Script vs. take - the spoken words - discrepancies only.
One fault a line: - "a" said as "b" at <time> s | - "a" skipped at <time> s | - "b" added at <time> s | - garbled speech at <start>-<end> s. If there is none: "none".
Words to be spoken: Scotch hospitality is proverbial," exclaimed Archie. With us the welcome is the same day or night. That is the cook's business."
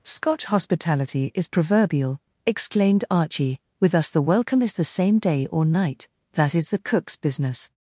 none